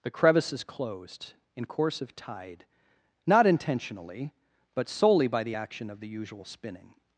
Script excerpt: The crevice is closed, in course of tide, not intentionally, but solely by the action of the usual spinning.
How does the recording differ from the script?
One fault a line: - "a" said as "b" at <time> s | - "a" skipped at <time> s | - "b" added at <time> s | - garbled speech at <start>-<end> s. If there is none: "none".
none